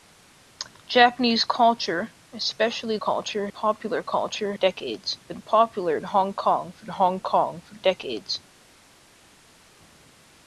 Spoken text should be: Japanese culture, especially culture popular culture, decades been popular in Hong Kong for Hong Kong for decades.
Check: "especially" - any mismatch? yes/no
no